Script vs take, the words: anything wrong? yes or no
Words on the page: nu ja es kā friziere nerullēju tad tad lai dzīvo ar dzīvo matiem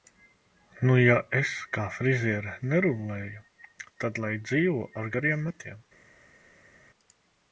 yes